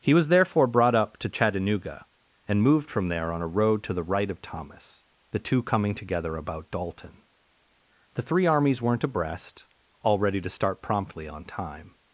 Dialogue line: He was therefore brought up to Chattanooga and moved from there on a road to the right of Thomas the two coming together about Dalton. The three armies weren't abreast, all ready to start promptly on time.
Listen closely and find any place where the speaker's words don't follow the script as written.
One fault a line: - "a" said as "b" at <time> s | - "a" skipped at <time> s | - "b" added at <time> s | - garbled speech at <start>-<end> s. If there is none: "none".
none